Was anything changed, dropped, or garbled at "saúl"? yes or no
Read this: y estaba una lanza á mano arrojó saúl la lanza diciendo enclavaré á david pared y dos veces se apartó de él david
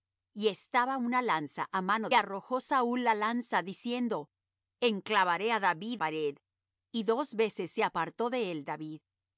no